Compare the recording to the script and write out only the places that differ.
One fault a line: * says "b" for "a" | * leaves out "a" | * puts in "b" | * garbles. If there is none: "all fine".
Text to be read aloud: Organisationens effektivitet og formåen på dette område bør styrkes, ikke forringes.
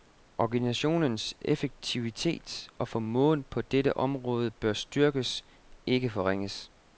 all fine